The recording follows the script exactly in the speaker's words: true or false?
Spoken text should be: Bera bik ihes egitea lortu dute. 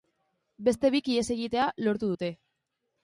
false